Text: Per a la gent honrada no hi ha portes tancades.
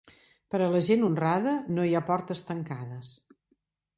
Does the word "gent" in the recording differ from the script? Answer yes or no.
no